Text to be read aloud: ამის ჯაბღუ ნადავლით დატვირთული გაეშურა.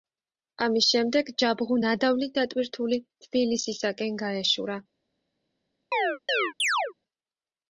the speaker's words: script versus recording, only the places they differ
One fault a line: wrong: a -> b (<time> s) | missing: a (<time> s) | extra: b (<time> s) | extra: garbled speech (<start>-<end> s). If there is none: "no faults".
extra: შემდეგ (0.9 s)
extra: თბილისისაკენ (3.3 s)